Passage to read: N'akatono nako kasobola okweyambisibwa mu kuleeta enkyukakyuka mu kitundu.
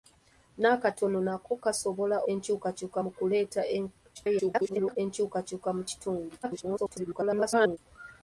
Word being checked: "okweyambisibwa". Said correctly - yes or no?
no